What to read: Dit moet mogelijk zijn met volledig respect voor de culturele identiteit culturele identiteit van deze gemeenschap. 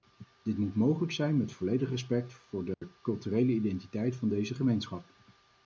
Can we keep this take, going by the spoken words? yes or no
no